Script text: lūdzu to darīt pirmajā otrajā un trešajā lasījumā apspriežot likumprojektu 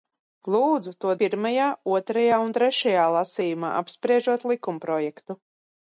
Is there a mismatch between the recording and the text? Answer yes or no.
yes